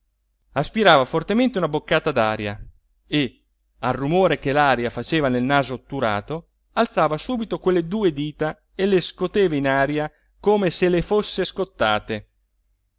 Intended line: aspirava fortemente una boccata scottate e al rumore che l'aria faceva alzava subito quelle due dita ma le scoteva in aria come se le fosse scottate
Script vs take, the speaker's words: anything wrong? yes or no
yes